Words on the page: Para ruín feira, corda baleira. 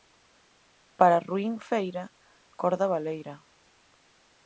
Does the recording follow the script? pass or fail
pass